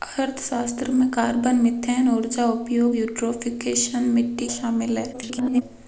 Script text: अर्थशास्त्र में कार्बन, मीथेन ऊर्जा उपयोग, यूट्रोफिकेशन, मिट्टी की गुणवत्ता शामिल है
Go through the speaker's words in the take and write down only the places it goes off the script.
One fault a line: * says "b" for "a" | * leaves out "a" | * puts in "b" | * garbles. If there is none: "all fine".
* leaves out "की गुणवत्ता"
* garbles